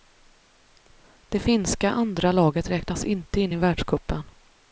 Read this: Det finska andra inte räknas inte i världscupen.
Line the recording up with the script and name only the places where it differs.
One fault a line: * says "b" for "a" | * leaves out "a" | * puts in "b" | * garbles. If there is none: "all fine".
* says "laget" for "inte"
* puts in "in"